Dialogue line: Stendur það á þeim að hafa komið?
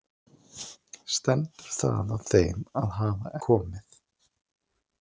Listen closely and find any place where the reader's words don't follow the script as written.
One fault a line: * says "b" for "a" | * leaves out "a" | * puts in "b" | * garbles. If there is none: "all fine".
all fine